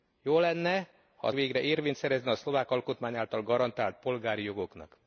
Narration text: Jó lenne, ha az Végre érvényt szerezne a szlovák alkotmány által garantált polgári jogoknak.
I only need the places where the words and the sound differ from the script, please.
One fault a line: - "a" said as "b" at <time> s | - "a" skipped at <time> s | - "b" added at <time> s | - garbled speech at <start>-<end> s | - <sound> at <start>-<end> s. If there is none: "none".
none